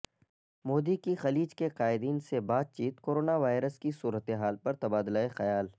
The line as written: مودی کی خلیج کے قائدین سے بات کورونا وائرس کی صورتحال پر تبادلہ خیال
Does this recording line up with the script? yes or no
no